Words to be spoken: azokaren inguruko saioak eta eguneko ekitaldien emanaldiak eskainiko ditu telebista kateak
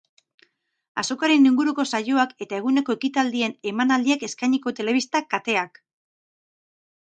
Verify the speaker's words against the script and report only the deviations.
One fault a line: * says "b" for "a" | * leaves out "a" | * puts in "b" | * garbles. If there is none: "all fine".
* leaves out "ditu"